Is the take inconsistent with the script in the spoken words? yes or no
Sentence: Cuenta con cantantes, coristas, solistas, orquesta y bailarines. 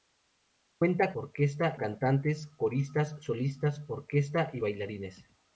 yes